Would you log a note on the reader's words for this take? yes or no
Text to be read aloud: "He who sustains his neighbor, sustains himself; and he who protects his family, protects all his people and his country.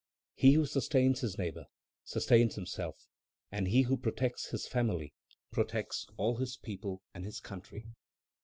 no